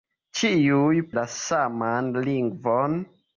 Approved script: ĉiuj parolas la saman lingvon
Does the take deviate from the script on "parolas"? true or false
true